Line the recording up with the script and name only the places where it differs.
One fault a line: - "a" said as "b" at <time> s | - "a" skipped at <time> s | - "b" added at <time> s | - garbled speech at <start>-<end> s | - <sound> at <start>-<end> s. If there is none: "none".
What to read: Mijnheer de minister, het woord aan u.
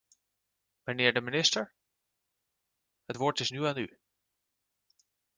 - "is nu" added at 3.4 s